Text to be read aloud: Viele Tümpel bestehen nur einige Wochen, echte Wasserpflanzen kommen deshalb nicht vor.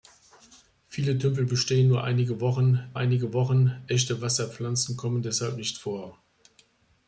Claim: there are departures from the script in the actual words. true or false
true